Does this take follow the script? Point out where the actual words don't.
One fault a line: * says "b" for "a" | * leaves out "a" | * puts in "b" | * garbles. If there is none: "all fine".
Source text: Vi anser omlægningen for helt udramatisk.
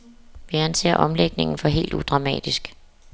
all fine